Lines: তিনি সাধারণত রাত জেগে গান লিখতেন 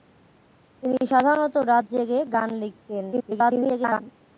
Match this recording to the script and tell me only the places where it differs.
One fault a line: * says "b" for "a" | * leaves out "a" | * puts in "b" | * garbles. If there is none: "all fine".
* garbles